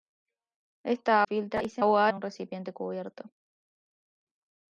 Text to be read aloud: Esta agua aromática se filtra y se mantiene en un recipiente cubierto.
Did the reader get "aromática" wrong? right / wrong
wrong